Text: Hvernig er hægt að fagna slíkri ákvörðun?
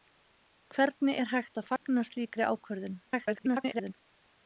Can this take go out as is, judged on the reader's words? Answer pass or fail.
fail